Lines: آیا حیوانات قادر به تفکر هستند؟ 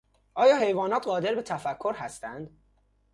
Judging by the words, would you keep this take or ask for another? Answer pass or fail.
pass